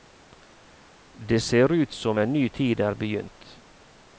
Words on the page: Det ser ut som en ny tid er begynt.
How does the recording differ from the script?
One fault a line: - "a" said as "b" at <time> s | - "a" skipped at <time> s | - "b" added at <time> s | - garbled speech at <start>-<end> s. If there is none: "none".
none